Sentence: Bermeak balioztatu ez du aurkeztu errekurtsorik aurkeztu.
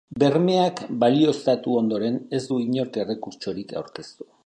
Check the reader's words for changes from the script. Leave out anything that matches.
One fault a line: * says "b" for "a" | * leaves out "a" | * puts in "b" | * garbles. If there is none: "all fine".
* puts in "ondoren"
* says "inork" for "aurkeztu"